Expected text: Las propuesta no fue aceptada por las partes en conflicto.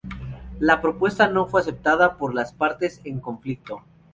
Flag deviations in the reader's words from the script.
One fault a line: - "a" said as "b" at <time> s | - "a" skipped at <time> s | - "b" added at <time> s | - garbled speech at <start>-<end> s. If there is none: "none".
- "Las" said as "La" at 0.6 s